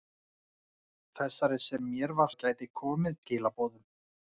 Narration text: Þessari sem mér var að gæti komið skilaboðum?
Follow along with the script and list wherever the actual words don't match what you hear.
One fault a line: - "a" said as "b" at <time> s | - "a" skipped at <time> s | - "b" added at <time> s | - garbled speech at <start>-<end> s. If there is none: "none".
none